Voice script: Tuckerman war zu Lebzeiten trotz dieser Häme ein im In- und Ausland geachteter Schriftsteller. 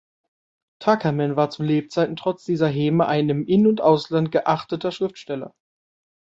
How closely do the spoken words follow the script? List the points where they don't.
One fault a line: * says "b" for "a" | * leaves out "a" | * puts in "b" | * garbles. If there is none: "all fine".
all fine